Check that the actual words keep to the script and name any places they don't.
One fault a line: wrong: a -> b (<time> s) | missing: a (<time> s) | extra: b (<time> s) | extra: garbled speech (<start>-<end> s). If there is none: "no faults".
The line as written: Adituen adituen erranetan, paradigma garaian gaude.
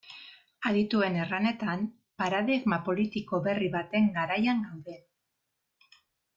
missing: adituen (1.2 s)
extra: politiko berri baten (2.9 s)